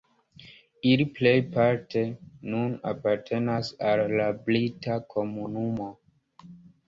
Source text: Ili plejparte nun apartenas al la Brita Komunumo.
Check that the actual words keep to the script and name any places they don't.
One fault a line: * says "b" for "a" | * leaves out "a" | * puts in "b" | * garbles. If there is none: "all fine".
all fine